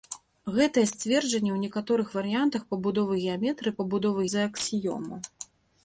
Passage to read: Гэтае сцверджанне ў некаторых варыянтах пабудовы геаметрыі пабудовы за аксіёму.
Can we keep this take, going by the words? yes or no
yes